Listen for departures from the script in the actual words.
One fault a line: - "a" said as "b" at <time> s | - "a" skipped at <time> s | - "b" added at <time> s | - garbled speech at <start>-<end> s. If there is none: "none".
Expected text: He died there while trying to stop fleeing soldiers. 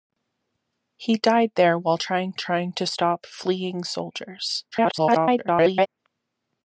- "trying" added at 2.3 s
- garbled speech at 4.7-5.9 s